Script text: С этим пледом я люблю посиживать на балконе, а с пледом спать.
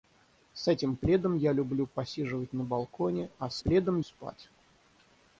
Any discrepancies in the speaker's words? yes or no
no